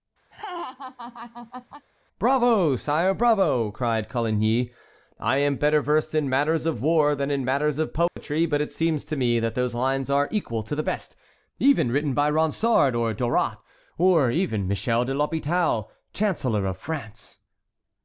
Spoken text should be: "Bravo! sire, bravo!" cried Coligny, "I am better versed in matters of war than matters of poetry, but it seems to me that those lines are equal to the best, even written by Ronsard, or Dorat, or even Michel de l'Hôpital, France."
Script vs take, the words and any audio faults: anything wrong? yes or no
yes